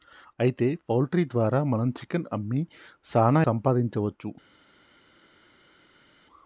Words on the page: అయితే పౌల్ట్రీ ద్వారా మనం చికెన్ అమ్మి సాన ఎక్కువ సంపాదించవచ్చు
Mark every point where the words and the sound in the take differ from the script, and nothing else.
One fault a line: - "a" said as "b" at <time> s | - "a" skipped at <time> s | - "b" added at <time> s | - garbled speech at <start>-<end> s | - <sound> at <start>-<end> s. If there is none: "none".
- "ఎక్కువ" skipped at 3.4 s